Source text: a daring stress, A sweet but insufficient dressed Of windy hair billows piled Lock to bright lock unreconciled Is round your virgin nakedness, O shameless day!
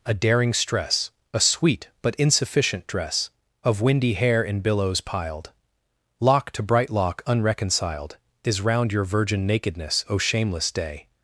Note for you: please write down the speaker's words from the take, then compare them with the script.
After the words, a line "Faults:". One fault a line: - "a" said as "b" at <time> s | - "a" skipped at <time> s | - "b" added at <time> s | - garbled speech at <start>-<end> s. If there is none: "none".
a daring stress, A sweet but insufficient dress Of windy hair in billows piled Lock to bright lock unreconciled Is round your virgin nakedness, O shameless day!
Faults:
- "dressed" said as "dress" at 2.9 s
- "in" added at 4.4 s